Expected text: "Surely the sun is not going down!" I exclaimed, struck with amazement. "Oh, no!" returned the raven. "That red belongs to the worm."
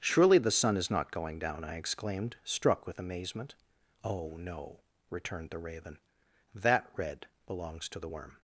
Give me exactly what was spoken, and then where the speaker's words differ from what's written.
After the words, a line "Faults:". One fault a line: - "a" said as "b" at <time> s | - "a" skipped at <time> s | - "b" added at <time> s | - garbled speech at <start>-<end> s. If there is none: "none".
"Surely the sun is not going down!" I exclaimed, struck with amazement. "Oh, no!" returned the raven. "That red belongs to the worm."
Faults:
none